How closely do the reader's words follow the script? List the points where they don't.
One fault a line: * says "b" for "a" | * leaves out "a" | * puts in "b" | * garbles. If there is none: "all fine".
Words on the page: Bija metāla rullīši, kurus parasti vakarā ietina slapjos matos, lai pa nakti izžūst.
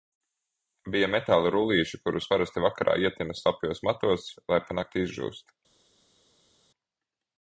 all fine